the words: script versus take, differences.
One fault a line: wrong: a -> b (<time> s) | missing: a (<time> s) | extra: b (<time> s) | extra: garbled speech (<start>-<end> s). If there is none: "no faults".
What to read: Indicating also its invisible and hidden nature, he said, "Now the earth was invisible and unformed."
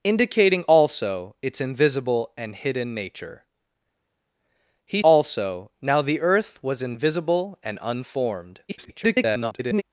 wrong: said -> also (5.0 s)
extra: garbled speech (8.7-9.8 s)